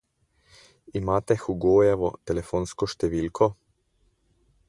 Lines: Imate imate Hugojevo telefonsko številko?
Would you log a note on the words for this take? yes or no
yes